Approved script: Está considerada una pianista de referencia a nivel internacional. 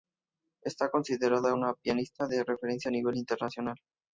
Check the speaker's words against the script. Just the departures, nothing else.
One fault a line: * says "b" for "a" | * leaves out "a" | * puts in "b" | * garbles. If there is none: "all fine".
all fine